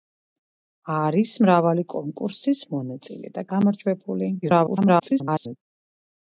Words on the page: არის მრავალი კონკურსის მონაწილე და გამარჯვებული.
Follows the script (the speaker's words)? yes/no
no